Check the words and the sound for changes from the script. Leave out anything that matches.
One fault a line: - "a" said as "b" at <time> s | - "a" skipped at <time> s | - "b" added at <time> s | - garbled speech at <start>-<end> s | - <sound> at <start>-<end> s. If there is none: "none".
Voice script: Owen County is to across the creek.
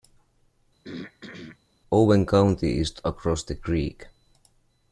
- throat clearing at 0.8-1.6 s